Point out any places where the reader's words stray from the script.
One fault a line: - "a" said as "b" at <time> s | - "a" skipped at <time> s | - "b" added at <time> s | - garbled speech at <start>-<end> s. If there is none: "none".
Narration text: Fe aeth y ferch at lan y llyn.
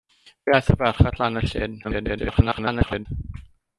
- garbled speech at 1.8-3.1 s